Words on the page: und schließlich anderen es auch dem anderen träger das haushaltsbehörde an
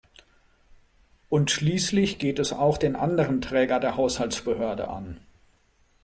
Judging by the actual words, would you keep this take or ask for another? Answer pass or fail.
fail